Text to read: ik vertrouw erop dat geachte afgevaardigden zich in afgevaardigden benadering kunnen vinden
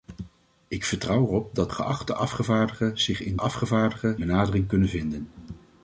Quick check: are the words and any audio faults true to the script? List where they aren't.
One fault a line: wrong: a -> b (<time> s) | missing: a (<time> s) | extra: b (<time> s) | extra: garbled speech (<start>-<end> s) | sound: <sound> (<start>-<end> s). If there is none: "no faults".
no faults